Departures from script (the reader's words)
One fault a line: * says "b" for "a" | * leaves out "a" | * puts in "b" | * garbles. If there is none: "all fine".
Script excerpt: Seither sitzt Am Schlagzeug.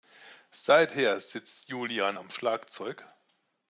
* puts in "Julian"